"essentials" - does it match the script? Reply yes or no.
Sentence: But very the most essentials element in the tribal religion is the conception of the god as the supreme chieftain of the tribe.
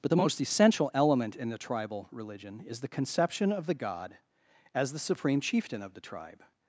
no